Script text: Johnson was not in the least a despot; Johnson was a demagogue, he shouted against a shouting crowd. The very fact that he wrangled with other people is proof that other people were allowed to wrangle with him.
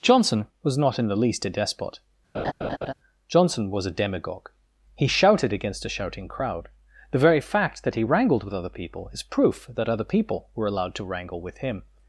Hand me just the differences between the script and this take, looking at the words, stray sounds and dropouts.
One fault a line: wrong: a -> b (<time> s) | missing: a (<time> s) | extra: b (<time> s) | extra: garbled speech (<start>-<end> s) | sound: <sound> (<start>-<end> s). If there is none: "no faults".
sound: laugh (2.3-2.9 s)